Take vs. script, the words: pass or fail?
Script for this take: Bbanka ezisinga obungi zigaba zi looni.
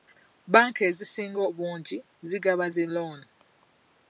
pass